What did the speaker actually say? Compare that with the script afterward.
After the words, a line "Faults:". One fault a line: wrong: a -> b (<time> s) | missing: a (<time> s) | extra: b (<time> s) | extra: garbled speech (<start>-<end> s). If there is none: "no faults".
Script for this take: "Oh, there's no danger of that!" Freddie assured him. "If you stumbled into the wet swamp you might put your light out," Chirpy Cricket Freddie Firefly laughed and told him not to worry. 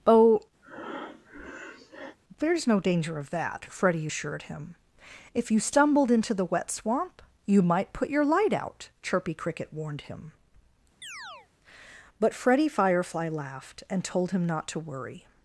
"Oh, there's no danger of that!" Freddie assured him. "If you stumbled into the wet swamp you might put your light out," Chirpy Cricket warned him. But Freddie Firefly laughed and told him not to worry.
Faults:
extra: warned him But (9.7 s)